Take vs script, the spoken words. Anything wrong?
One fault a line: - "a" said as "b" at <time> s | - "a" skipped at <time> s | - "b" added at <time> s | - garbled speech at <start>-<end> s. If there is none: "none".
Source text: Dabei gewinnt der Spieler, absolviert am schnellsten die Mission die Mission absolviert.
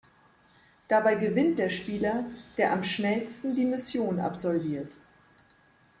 - "absolviert" said as "der" at 2.6 s
- "die Mission" skipped at 4.2 s